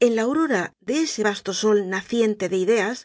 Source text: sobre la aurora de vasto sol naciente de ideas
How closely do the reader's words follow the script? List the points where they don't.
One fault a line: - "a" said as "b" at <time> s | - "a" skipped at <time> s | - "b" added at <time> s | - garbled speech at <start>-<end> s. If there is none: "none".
- "sobre" said as "en" at 0.0 s
- "ese" added at 1.0 s